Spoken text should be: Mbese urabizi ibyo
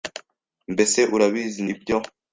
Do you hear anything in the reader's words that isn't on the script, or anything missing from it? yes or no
no